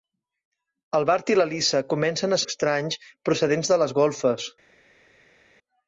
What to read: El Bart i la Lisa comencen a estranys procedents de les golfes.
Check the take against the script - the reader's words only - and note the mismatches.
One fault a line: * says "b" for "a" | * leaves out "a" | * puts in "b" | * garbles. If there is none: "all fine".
all fine